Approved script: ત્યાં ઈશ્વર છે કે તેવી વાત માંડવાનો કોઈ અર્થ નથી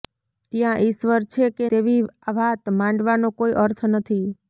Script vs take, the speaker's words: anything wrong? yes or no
no